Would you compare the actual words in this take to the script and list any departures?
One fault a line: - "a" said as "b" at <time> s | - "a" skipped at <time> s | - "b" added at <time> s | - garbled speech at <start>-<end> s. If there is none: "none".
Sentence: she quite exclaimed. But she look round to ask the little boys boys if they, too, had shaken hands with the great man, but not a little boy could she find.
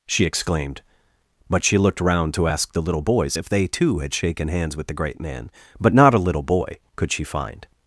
- "quite" skipped at 0.3 s
- "look" said as "looked" at 1.8 s
- "boys" skipped at 3.4 s